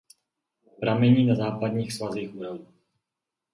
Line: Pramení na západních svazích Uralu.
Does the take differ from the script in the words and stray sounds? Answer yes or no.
no